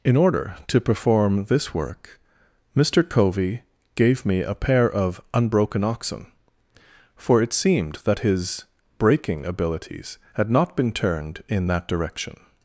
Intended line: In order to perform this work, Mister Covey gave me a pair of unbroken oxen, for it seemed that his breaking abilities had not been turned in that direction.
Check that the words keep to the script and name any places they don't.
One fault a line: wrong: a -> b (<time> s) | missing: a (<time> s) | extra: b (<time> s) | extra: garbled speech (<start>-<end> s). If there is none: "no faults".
no faults